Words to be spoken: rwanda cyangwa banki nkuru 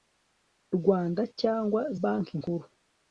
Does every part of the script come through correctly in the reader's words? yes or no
yes